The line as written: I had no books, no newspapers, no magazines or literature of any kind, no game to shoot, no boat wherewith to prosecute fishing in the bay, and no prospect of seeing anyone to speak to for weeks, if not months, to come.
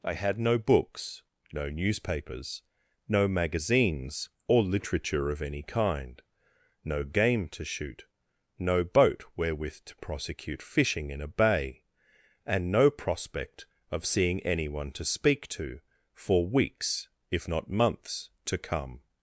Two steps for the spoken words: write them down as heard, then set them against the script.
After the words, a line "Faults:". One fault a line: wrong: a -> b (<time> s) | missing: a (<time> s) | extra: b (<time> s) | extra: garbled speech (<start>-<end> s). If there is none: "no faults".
I had no books, no newspapers, no magazines or literature of any kind, no game to shoot, no boat wherewith to prosecute fishing in a bay, and no prospect of seeing anyone to speak to for weeks, if not months, to come.
Faults:
wrong: the -> a (11.2 s)